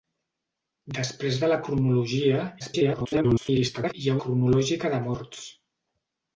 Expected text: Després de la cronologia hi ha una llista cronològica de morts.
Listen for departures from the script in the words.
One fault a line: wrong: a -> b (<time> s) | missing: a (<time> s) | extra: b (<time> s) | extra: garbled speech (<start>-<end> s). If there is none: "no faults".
extra: garbled speech (2.6-3.9 s)
missing: una llista (4.2 s)